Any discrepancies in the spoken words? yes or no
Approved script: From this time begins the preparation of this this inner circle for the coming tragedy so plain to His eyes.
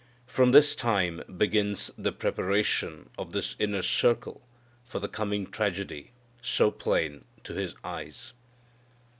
yes